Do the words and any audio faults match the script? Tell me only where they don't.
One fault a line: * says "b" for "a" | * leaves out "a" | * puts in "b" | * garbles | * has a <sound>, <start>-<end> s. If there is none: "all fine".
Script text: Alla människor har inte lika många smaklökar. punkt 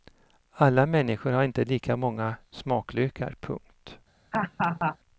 * has a laugh, 4.3-5.0 s